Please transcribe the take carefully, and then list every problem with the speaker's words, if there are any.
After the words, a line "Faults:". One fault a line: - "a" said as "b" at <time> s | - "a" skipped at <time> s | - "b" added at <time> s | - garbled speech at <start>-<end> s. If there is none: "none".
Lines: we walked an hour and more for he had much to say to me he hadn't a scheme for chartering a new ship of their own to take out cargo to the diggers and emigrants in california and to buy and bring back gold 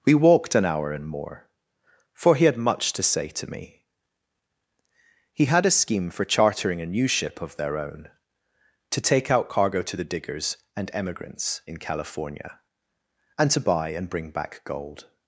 we walked an hour and more for he had much to say to me he had a scheme for chartering a new ship of their own to take out cargo to the diggers and emigrants in california and to buy and bring back gold
Faults:
- "hadn't" said as "had" at 5.5 s